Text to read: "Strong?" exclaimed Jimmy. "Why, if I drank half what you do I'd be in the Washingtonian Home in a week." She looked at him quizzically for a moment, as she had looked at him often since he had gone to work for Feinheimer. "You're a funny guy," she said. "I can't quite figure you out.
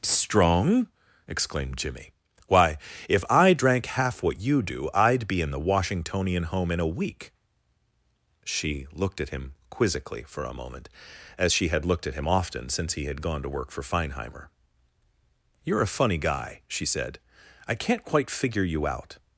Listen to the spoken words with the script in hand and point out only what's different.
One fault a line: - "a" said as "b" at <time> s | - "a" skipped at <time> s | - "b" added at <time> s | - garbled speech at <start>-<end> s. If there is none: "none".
none